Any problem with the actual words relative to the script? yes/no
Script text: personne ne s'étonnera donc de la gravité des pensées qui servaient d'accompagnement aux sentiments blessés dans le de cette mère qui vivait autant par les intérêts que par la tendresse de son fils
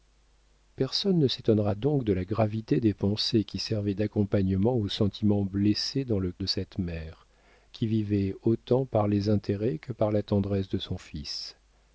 no